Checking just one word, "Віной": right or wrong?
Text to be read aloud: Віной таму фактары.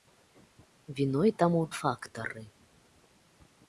right